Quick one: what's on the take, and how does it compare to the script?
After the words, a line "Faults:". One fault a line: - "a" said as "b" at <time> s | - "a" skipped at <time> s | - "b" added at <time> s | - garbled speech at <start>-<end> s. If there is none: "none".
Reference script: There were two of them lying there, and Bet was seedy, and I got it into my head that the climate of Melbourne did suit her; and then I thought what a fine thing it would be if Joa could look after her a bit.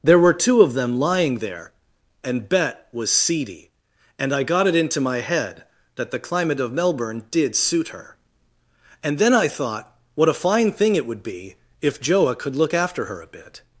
There were two of them lying there, and Bet was seedy, and I got it into my head that the climate of Melbourne did suit her; and then I thought what a fine thing it would be if Joa could look after her a bit.
Faults:
none